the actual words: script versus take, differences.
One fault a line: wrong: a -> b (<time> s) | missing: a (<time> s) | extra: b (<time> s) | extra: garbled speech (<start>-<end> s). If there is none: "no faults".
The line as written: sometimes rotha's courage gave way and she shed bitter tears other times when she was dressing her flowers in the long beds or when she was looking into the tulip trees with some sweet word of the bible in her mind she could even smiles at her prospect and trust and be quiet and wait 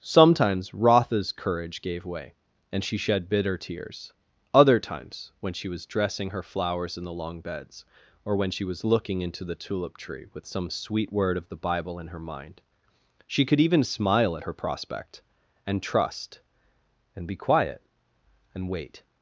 wrong: trees -> tree (10.0 s)
wrong: smiles -> smile (13.8 s)